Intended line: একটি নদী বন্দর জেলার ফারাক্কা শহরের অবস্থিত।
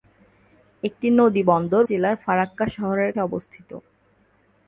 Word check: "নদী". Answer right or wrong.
right